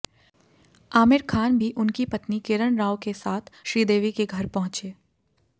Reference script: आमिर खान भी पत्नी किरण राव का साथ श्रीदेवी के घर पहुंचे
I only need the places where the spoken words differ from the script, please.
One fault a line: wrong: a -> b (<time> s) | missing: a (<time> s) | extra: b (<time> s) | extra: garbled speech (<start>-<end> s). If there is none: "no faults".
extra: उनकी (1.8 s)
wrong: का -> के (3.0 s)